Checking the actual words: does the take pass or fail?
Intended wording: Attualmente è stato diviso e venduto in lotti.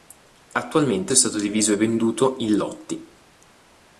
pass